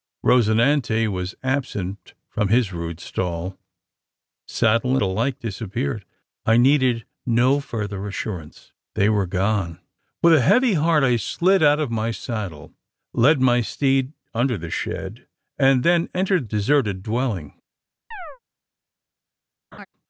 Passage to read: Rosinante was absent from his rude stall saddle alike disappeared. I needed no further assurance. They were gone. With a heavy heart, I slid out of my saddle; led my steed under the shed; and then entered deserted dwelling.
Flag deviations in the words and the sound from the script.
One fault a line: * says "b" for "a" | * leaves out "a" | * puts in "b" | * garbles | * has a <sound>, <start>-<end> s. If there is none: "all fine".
* has a chirp, 18.1-18.4 s
* has a laugh, 19.7-19.9 s